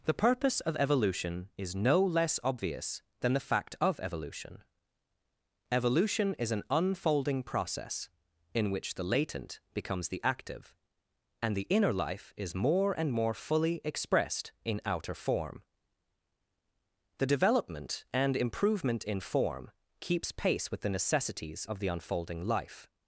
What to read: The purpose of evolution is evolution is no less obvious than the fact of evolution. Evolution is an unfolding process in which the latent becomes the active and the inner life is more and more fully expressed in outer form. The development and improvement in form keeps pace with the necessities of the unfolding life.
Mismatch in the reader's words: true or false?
true